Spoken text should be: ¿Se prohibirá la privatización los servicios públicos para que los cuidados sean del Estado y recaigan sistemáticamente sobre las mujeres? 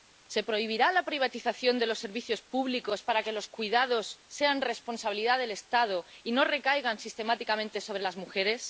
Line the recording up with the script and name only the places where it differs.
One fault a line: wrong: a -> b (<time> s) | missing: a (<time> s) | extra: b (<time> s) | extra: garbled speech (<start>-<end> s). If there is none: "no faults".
extra: de (1.8 s)
extra: responsabilidad (4.7 s)
extra: no (6.3 s)